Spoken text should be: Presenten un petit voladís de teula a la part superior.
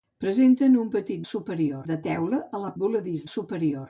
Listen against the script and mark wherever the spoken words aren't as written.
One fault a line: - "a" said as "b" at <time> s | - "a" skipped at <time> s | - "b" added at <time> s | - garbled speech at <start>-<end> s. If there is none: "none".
- "voladís" said as "superior" at 1.2 s
- "part" said as "voladís" at 2.8 s